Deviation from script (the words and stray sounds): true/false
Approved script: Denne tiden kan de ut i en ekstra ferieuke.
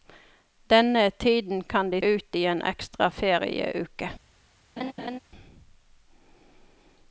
true